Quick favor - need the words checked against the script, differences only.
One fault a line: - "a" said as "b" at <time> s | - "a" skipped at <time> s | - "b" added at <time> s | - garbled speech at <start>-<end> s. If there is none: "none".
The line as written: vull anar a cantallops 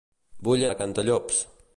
- "anar" skipped at 0.7 s